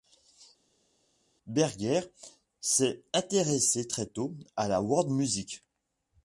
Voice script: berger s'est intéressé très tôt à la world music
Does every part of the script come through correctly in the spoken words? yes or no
yes